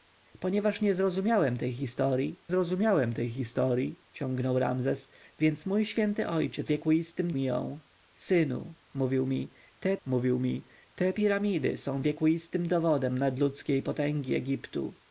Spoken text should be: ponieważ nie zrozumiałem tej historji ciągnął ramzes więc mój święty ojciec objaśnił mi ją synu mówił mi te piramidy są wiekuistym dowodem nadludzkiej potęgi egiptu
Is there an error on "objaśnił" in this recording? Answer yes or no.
yes